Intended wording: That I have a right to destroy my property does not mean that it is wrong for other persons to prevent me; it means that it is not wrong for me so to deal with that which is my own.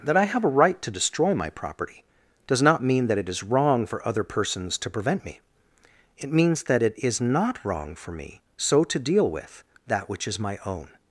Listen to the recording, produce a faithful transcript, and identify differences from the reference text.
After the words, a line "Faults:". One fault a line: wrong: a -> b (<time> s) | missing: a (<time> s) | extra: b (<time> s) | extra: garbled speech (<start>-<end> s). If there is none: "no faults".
That I have a right to destroy my property does not mean that it is wrong for other persons to prevent me; it means that it is not wrong for me so to deal with that which is my own.
Faults:
no faults